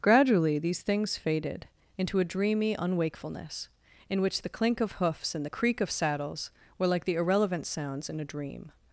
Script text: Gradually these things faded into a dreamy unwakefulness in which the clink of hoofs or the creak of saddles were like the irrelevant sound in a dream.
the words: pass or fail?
fail